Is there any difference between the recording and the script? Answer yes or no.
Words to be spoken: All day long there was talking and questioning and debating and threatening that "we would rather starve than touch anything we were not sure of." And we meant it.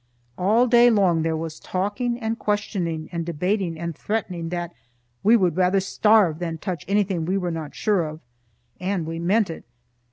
no